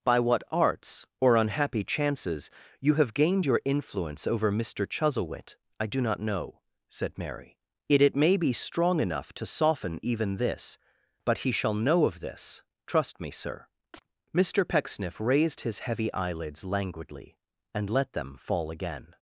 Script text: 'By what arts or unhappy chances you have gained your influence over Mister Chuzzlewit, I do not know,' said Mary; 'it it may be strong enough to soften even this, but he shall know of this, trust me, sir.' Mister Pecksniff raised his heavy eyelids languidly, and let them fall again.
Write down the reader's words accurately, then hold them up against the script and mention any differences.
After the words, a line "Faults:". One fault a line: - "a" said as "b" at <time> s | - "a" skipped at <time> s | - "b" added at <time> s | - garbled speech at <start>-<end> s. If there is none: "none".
'By what arts or unhappy chances you have gained your influence over Mister Chuzzlewit, I do not know,' said Mary; 'it it may be strong enough to soften even this, but he shall know of this, trust me, sir.' Mister Pecksniff raised his heavy eyelids languidly, and let them fall again.
Faults:
none